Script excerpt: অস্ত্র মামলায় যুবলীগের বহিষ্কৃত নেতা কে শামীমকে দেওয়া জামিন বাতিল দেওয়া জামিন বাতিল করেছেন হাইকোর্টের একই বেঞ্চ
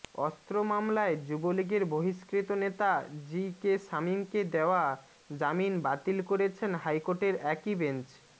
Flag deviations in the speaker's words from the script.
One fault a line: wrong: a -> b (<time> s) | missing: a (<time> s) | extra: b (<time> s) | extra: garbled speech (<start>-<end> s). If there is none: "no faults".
extra: জি (3.2 s)
missing: দেওয়া জামিন বাতিল (6.2 s)